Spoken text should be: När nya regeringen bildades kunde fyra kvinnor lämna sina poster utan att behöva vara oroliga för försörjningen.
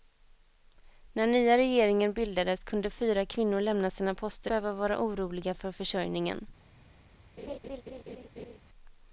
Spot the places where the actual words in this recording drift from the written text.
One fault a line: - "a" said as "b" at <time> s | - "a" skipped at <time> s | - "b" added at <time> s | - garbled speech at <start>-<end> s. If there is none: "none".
- "utan att" skipped at 4.5 s